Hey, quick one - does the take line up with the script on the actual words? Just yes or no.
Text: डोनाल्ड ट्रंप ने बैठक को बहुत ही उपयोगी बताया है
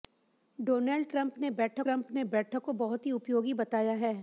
no